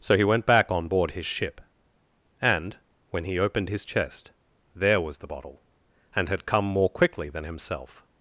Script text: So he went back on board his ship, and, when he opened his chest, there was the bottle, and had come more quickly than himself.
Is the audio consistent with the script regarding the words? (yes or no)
yes